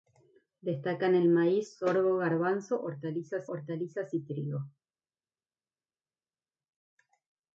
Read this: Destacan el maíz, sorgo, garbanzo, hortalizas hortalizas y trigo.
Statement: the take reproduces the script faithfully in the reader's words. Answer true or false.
true